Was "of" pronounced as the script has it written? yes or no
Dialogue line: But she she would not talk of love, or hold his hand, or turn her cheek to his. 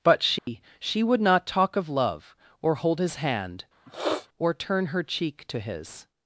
yes